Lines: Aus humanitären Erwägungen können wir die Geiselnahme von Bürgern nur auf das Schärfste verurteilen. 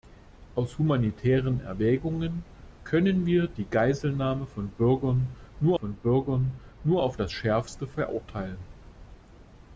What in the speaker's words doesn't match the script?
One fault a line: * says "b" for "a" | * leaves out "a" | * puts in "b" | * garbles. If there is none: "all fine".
* puts in "von Bürgern nur"